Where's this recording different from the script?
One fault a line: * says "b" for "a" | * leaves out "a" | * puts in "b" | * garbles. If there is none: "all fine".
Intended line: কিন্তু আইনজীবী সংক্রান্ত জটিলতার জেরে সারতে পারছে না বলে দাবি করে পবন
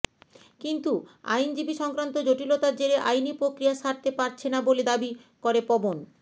* puts in "আইনি প্রক্রিয়া"